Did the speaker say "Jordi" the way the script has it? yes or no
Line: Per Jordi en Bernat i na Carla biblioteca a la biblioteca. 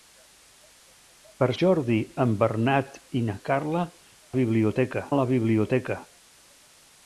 yes